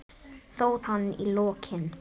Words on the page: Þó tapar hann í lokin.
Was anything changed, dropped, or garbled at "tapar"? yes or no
yes